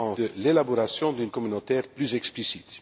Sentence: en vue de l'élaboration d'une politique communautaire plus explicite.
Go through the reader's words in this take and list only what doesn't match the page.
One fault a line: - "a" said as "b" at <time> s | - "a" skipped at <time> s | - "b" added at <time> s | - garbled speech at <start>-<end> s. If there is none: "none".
- "vue" skipped at 0.1 s
- "politique" skipped at 1.3 s